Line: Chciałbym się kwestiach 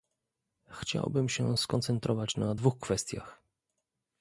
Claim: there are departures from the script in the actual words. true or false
true